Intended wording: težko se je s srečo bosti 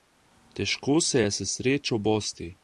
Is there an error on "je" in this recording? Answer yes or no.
no